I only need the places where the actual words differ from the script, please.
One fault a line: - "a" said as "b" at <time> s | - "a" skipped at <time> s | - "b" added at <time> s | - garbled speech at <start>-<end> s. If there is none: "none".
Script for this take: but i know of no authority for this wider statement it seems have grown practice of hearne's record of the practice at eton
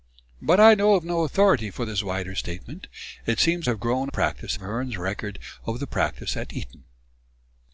none